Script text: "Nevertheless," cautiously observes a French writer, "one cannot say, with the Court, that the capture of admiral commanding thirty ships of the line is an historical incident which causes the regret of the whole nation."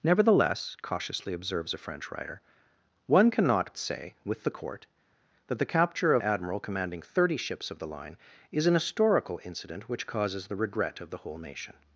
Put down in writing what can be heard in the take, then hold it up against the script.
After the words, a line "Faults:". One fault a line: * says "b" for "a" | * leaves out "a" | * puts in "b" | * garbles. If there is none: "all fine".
"Nevertheless," cautiously observes a French writer, "one cannot say, with the Court, that the capture of admiral commanding thirty ships of the line is an historical incident which causes the regret of the whole nation."
Faults:
all fine